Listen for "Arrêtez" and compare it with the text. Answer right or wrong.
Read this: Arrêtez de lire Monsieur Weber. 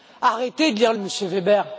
right